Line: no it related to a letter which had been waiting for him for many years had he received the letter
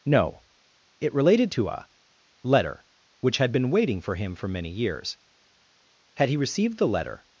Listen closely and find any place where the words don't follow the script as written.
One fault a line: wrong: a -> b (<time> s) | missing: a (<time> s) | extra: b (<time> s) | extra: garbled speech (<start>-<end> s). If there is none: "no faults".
no faults